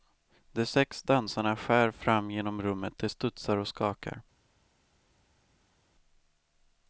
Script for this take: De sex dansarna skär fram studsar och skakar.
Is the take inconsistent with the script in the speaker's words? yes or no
yes